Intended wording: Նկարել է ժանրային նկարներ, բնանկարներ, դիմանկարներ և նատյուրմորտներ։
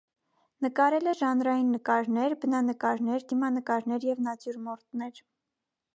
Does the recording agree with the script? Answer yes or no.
yes